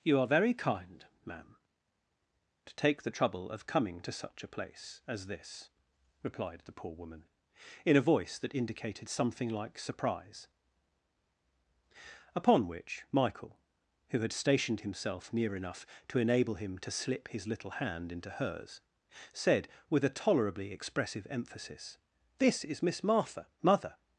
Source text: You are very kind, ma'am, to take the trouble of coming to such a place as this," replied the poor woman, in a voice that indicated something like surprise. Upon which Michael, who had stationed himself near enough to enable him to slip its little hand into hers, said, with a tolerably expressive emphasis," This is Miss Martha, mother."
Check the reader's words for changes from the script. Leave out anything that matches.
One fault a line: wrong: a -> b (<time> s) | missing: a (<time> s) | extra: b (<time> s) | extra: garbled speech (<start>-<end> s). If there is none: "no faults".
wrong: its -> his (17.3 s)